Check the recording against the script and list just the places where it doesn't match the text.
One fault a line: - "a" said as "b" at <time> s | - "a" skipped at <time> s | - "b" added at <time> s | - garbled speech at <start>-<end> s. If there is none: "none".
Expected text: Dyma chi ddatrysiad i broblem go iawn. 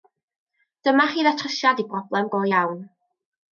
none